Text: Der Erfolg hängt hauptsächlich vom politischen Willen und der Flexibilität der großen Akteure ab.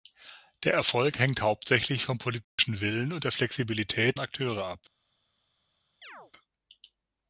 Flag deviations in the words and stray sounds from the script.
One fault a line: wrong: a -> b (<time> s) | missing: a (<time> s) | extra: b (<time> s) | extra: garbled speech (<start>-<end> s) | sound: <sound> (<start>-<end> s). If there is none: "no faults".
sound: dropout (2.4-2.6 s)
missing: der großen (4.2 s)
sound: chirp (6.0-6.3 s)